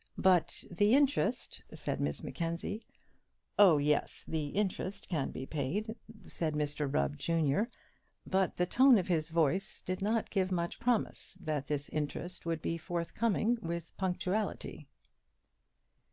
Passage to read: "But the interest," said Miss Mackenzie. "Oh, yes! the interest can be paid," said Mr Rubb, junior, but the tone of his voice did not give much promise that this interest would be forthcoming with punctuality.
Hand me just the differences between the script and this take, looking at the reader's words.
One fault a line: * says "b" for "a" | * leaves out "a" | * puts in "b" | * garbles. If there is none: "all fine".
all fine